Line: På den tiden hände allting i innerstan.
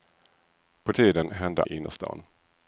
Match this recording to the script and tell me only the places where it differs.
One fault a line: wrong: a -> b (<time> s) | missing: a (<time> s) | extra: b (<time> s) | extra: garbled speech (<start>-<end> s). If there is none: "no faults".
missing: den (0.9 s)
missing: allting (1.6 s)